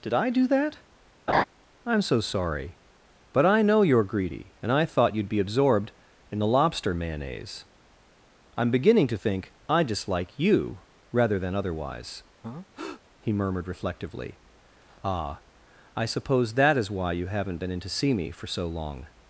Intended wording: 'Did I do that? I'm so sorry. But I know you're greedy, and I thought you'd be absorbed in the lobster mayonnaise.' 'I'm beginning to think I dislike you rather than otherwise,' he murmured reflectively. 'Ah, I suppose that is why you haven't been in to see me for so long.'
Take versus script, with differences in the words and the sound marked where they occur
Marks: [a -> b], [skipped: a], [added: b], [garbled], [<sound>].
'Did I do that? [laugh] I'm so sorry. But I know you're greedy, and I thought you'd be absorbed in the lobster mayonnaise.' 'I'm beginning to think I dislike you rather than otherwise,' [breath] he murmured reflectively. 'Ah, I suppose that is why you haven't been in to see me for so long.'